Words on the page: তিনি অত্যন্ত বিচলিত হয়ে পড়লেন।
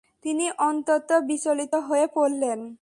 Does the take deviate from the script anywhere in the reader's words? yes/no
no